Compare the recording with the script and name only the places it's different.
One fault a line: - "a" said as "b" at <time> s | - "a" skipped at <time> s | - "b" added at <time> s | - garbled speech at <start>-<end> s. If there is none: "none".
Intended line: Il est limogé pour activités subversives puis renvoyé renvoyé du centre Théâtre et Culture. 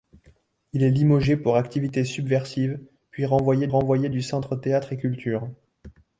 none